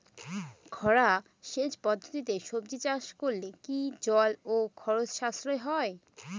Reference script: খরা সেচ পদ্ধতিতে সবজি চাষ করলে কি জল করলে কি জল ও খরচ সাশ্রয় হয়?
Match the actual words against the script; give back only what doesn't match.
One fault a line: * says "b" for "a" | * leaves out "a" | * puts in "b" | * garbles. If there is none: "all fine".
* leaves out "করলে কি জল"